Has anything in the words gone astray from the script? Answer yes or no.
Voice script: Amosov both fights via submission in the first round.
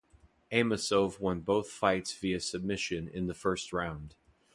yes